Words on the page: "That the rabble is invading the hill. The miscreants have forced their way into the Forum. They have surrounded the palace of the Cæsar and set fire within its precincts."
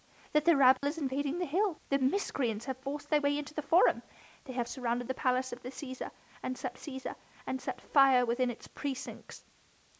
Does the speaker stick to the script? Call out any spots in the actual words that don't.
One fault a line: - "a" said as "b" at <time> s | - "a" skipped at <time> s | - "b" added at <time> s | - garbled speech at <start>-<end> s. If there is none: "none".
- "Cæsar and set" added at 6.8 s